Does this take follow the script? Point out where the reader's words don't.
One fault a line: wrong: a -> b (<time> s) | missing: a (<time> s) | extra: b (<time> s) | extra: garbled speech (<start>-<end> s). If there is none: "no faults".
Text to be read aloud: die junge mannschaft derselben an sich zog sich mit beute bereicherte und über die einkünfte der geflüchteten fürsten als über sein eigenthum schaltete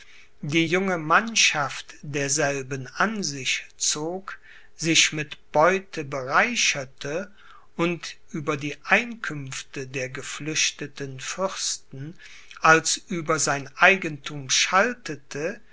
no faults